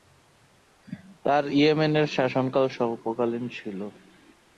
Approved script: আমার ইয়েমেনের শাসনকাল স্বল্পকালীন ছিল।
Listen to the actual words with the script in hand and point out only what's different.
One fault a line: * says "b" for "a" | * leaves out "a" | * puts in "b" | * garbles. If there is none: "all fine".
* says "তার" for "আমার"